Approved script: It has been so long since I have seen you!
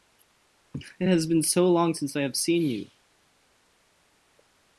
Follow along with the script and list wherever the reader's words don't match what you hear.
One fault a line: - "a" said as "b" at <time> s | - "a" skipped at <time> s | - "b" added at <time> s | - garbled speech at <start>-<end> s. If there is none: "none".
none